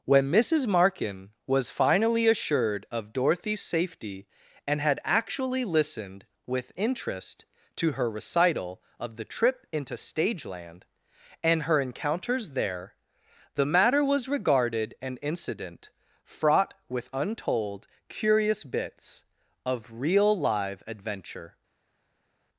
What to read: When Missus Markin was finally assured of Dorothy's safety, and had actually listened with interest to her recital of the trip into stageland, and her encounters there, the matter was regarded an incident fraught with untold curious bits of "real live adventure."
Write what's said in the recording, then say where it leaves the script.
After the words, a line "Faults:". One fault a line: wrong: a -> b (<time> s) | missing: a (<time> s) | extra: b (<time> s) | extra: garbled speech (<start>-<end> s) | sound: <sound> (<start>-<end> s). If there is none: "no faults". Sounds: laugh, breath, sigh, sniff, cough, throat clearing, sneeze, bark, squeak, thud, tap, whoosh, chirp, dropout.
When Missus Markin was finally assured of Dorothy's safety, and had actually listened with interest to her recital of the trip into stageland, and her encounters there, the matter was regarded an incident fraught with untold curious bits of "real live adventure."
Faults:
no faults